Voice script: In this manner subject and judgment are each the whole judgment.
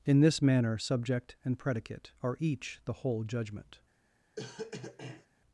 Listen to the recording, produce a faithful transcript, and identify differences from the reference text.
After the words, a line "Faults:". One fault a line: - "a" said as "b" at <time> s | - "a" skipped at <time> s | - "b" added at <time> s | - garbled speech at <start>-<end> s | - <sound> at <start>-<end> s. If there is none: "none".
In this manner subject and predicate are each the whole judgment.
Faults:
- "judgment" said as "predicate" at 1.6 s
- cough at 4.4-5.3 s